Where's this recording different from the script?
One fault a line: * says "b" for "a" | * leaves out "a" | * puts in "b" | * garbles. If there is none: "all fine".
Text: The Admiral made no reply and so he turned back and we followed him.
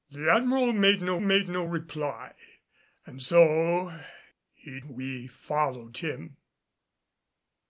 * puts in "made no"
* leaves out "turned back and"